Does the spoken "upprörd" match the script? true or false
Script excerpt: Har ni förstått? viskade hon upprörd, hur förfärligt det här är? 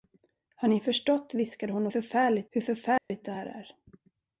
false